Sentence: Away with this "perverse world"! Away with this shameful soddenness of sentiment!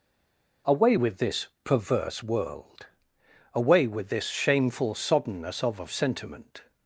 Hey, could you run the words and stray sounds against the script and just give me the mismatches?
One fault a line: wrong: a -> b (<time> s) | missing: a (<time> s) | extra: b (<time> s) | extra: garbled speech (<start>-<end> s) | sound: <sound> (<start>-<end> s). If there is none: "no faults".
extra: of (5.8 s)